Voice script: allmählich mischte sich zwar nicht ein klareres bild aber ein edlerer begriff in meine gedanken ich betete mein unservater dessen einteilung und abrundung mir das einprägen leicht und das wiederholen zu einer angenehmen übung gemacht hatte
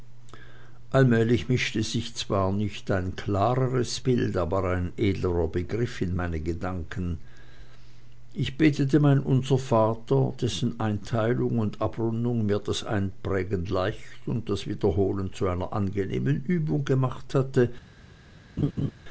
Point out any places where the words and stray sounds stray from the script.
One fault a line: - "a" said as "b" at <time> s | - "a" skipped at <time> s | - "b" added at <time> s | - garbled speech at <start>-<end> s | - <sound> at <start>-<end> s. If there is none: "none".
- laugh at 18.6-18.9 s